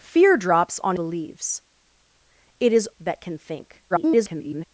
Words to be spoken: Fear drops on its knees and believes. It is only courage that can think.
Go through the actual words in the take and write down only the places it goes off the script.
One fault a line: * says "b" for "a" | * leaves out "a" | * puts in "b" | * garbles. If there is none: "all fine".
* leaves out "its knees and"
* leaves out "only courage"
* garbles